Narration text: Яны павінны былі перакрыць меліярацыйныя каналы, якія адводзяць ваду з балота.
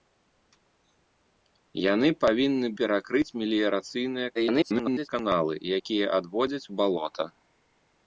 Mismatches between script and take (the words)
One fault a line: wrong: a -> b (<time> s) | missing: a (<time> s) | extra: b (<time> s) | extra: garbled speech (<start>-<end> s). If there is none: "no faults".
missing: былі (2.7 s)
extra: garbled speech (4.3-5.1 s)
missing: ваду (6.7 s)